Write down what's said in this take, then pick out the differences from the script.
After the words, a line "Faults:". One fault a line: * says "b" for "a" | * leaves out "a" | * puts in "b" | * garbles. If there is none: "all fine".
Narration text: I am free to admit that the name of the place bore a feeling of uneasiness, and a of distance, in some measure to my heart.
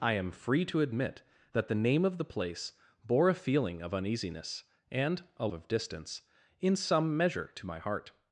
I am free to admit that the name of the place bore a feeling of uneasiness, and a of distance, in some measure to my heart.
Faults:
all fine